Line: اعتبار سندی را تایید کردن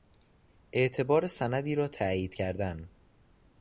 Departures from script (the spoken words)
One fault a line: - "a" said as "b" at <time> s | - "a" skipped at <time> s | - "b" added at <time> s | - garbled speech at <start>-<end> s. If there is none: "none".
none